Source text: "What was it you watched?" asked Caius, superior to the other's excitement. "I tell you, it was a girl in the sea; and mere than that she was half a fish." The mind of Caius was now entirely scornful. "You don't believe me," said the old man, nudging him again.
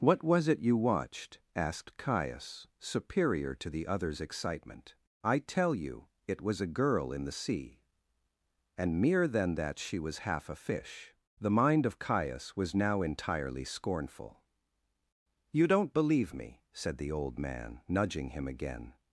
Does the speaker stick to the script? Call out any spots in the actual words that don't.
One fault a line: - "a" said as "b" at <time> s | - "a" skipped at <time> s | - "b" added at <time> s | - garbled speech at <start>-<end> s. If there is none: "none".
none